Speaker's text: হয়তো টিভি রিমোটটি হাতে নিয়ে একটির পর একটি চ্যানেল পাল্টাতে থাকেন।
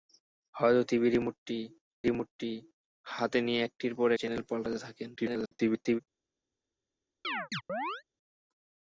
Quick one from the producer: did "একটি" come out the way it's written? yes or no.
no